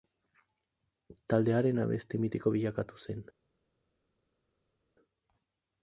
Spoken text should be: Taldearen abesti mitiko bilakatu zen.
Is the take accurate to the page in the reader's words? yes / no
yes